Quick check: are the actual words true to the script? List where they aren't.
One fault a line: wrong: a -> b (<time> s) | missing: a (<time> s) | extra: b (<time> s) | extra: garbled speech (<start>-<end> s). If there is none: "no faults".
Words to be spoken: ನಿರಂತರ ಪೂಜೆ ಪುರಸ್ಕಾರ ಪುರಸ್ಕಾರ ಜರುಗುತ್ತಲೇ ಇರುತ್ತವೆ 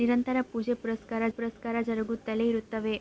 no faults